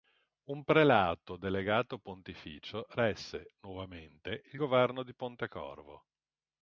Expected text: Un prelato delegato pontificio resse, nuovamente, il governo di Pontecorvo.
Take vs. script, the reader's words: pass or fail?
pass